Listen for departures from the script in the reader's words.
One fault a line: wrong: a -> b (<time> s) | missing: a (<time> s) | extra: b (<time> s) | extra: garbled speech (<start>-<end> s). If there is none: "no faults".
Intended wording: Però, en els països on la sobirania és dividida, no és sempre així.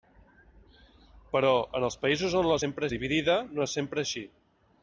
wrong: sobirania -> sempre (2.6 s)